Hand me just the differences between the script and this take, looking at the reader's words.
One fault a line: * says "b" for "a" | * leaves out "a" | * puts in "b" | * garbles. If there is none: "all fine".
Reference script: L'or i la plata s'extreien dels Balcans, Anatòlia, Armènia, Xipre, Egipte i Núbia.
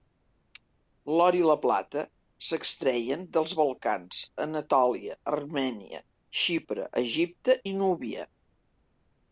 all fine